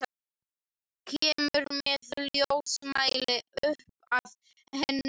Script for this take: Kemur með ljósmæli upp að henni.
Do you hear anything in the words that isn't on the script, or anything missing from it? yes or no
no